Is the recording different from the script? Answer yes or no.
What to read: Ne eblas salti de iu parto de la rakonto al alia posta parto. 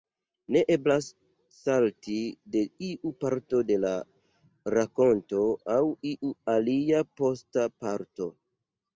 yes